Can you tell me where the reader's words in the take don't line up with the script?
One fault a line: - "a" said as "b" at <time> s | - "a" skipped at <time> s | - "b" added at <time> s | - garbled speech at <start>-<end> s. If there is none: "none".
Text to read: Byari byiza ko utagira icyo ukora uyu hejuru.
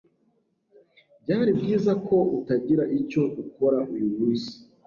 - "hejuru" said as "munsi" at 4.2 s